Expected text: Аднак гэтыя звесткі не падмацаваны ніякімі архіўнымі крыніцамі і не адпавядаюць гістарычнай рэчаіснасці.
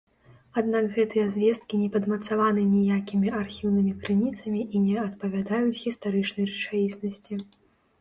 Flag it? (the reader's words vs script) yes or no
no